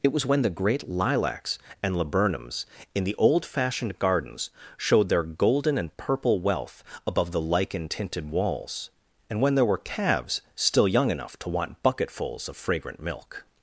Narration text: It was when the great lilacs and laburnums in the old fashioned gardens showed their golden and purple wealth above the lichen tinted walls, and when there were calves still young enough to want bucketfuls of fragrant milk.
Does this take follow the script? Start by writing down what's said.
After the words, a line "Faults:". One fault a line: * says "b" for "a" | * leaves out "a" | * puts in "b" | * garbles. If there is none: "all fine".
It was when the great lilacs and laburnums in the old fashioned gardens showed their golden and purple wealth above the lichen tinted walls, and when there were calves still young enough to want bucketfuls of fragrant milk.
Faults:
all fine